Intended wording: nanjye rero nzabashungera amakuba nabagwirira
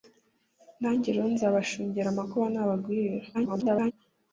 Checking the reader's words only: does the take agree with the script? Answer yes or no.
no